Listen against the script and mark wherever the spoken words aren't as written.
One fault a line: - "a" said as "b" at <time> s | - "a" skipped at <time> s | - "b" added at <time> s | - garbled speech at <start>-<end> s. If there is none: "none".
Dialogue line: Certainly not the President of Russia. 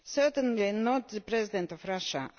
none